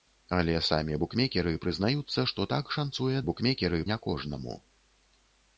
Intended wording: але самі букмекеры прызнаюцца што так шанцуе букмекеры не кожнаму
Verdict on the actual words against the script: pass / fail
pass